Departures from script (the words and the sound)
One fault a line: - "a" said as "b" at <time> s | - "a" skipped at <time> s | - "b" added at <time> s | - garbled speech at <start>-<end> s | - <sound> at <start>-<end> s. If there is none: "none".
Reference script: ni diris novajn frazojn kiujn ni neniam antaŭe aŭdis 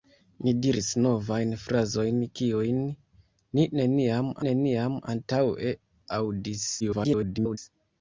- "neniam" added at 4.5 s
- garbled speech at 6.8-7.6 s